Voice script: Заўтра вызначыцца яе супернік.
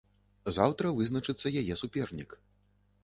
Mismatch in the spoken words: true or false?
false